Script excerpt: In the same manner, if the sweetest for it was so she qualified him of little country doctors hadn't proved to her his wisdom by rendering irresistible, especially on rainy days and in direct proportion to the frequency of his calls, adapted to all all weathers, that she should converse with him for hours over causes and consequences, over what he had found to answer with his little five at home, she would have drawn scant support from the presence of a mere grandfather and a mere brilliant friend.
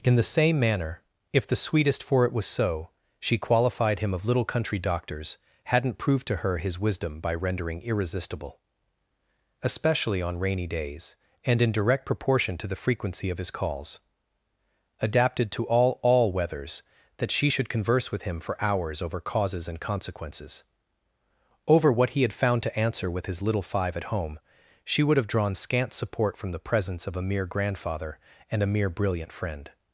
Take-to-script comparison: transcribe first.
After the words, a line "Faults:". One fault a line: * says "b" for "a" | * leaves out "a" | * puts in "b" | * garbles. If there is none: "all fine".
In the same manner, if the sweetest for it was so she qualified him of little country doctors hadn't proved to her his wisdom by rendering irresistible, especially on rainy days and in direct proportion to the frequency of his calls, adapted to all all weathers, that she should converse with him for hours over causes and consequences, over what he had found to answer with his little five at home, she would have drawn scant support from the presence of a mere grandfather and a mere brilliant friend.
Faults:
all fine